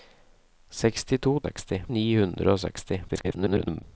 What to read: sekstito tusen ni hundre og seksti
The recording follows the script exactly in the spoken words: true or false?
false